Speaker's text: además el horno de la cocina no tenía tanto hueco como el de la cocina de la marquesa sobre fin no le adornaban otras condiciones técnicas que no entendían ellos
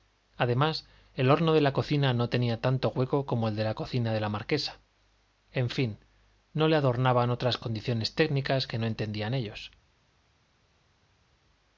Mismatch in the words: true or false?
true